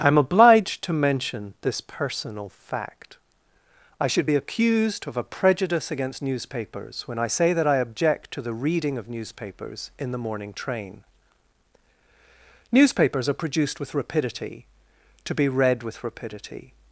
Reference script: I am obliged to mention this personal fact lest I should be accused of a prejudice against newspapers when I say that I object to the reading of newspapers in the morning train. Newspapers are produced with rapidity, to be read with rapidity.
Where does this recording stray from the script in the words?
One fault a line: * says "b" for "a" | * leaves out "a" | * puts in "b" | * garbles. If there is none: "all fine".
* leaves out "lest"